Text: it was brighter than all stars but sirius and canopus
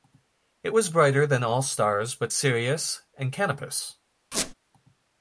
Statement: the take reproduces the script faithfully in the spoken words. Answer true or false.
true